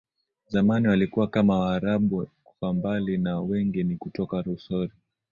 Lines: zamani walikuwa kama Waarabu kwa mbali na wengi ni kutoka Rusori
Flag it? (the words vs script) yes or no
no